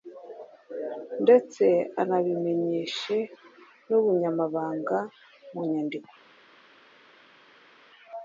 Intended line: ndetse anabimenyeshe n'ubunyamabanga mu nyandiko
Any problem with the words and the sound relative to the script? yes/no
no